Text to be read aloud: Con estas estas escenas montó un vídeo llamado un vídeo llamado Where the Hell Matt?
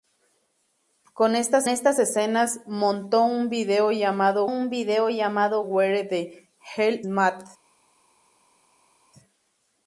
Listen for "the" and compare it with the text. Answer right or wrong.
right